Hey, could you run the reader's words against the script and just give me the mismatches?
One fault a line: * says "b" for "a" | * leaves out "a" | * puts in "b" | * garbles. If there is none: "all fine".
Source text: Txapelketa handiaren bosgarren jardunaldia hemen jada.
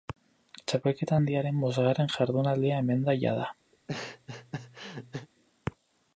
* puts in "da"